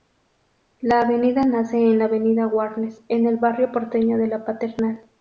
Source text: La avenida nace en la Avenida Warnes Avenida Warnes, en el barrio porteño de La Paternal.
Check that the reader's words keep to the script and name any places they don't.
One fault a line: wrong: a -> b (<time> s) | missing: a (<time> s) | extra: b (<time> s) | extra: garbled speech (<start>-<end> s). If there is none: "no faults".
missing: Avenida Warnes (3.0 s)